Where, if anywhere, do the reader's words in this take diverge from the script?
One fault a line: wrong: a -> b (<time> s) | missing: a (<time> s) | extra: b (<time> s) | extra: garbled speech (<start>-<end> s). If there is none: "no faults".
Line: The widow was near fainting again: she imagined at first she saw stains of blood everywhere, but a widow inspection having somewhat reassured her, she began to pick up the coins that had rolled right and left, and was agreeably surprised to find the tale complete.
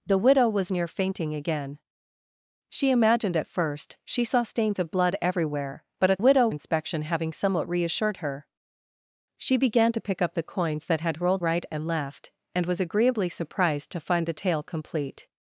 no faults